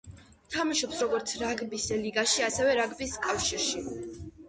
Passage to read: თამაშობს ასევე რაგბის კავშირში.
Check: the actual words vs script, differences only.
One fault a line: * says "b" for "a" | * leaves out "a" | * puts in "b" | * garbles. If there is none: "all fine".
* puts in "როგორც რაგბის ლიგაში"